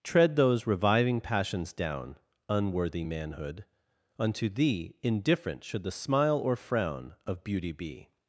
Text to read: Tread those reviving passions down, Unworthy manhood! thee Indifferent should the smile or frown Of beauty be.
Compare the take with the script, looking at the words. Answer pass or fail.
fail